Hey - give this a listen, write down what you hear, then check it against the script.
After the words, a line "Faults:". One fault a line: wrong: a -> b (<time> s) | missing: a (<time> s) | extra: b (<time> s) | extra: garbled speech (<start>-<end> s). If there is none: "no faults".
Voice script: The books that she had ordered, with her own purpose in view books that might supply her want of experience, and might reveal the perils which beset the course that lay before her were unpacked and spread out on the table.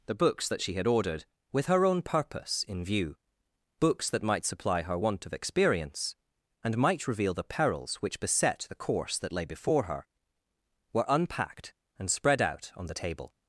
The books that she had ordered, with her own purpose in view books that might supply her want of experience, and might reveal the perils which beset the course that lay before her were unpacked and spread out on the table.
Faults:
no faults